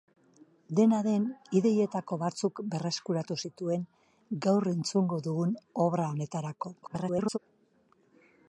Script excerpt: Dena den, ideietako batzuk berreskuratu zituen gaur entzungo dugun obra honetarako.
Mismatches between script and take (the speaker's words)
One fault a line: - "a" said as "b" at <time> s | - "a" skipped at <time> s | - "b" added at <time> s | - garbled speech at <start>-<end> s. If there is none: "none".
- garbled speech at 6.8-7.4 s